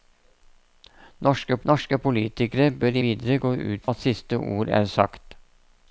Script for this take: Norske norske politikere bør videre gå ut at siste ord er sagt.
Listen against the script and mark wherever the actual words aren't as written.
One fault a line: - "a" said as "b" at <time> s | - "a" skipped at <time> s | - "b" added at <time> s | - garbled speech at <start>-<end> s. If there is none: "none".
none